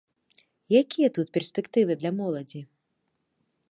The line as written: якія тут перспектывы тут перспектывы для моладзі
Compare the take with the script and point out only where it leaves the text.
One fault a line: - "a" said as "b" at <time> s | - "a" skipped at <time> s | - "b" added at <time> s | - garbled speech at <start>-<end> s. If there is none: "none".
- "тут перспектывы" skipped at 1.9 s